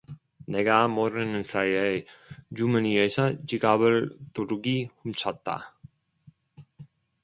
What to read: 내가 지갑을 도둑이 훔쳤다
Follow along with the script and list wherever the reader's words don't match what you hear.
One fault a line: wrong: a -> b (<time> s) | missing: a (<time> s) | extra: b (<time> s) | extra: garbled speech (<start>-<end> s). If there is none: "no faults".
extra: 모르는 사이에 주머니에서 (0.9 s)